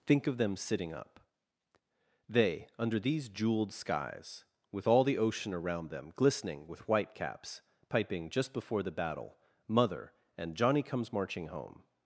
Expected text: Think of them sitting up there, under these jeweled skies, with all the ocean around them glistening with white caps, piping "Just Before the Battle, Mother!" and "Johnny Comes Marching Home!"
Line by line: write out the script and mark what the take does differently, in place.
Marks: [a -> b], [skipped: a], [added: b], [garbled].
Think of them sitting up [there, -> they] under these jeweled skies, with all the ocean around them glistening with white caps, piping "Just Before the Battle, Mother!" and "Johnny Comes Marching Home!"